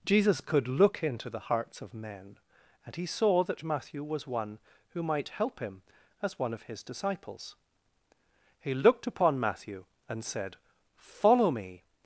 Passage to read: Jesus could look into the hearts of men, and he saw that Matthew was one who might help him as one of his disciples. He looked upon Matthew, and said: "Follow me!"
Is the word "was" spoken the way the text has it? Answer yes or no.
yes